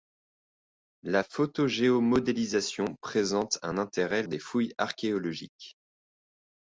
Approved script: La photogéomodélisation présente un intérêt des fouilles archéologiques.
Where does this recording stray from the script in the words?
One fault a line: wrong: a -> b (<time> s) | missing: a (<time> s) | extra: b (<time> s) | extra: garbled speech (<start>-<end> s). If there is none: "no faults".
no faults